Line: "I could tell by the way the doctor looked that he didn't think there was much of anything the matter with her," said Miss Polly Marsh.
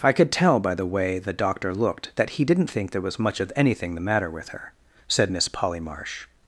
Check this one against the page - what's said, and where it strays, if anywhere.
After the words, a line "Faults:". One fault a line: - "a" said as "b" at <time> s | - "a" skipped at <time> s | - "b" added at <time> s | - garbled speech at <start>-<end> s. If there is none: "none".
"I could tell by the way the doctor looked that he didn't think there was much of anything the matter with her," said Miss Polly Marsh.
Faults:
none